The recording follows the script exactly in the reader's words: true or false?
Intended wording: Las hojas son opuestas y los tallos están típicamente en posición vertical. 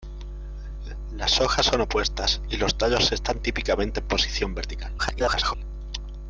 false